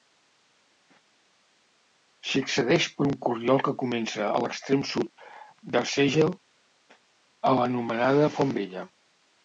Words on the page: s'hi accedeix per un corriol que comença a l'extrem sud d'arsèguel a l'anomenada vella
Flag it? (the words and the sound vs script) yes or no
yes